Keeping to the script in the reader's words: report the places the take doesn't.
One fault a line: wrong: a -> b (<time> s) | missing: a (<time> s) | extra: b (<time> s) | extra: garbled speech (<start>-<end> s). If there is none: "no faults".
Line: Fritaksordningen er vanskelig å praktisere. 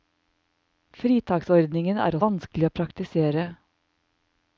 no faults